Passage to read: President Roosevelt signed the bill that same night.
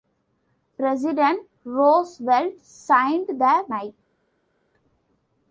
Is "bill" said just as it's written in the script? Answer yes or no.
no